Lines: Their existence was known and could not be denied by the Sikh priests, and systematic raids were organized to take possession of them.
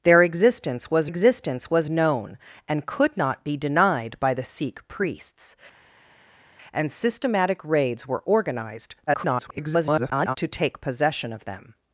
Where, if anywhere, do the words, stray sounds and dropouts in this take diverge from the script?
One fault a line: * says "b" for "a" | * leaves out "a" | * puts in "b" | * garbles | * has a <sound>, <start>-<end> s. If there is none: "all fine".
* puts in "existence was"
* garbles